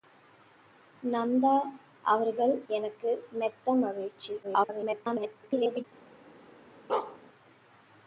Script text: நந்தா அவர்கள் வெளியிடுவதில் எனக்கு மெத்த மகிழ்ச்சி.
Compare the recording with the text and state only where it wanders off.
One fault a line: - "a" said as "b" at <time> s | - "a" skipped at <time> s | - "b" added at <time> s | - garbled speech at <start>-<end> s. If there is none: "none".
- "வெளியிடுவதில்" skipped at 2.5 s
- garbled speech at 4.4-5.8 s